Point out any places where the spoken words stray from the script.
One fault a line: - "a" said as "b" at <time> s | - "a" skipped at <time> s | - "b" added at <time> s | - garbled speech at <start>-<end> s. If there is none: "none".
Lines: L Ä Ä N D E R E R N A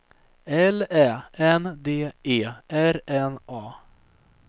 - "Ä" skipped at 1.1 s
- "E R" skipped at 3.0 s